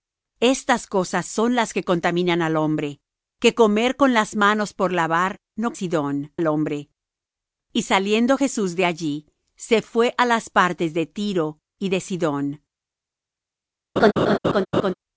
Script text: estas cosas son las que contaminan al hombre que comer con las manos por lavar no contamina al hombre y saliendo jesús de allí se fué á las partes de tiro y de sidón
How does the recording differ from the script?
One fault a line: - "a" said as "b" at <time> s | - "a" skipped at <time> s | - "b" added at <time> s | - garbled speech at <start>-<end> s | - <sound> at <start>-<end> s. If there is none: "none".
- "contamina" said as "sidón" at 5.7 s
- laugh at 14.0-14.9 s